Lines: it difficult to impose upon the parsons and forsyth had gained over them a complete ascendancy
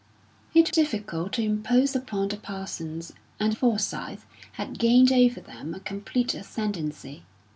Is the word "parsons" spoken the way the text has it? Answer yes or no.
yes